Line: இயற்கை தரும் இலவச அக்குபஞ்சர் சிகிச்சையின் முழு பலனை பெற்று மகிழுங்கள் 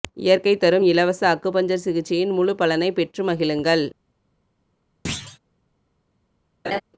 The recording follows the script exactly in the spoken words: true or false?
true